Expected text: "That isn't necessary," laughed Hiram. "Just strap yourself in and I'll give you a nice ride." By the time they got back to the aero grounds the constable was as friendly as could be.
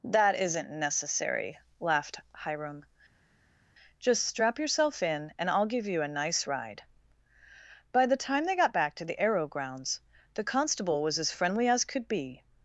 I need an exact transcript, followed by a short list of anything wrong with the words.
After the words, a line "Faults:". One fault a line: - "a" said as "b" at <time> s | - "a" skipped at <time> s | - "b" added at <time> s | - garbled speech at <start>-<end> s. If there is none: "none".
"That isn't necessary," laughed Hiram. "Just strap yourself in and I'll give you a nice ride." By the time they got back to the aero grounds the constable was as friendly as could be.
Faults:
none